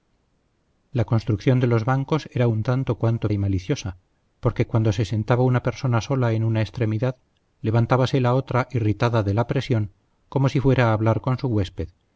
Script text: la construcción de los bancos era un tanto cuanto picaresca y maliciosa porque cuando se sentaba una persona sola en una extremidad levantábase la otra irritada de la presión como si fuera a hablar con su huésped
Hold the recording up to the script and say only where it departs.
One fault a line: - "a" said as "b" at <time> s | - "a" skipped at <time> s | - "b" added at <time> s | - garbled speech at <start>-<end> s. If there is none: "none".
- "picaresca" skipped at 3.3 s